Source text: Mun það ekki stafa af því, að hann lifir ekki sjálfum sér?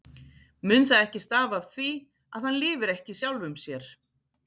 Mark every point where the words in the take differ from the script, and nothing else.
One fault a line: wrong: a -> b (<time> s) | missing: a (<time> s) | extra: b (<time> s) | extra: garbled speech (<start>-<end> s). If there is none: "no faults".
no faults